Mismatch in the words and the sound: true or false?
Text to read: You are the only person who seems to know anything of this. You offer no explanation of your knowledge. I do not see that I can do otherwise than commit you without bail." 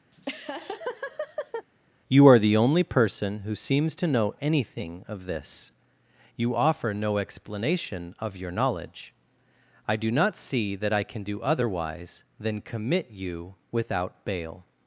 true